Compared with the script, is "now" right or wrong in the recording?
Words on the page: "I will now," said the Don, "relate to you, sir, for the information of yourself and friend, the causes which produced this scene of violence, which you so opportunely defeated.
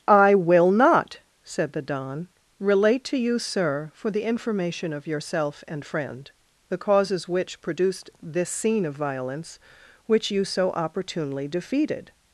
wrong